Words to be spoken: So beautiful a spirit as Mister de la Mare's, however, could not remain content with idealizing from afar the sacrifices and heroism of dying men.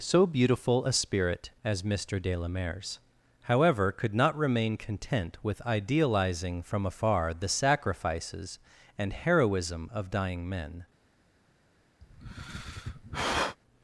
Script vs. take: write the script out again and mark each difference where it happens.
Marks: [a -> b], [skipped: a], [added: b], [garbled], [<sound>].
So beautiful a spirit as Mister de la Mare's, however, could not remain content with idealizing from afar the sacrifices and heroism of dying men. [sigh]